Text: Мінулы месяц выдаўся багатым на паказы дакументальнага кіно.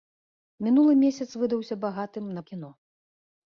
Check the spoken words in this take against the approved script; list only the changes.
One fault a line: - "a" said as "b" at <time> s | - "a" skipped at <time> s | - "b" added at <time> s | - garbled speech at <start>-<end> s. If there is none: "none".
- "паказы дакументальнага" skipped at 2.4 s